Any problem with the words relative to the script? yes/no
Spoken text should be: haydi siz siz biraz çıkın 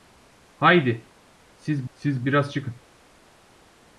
no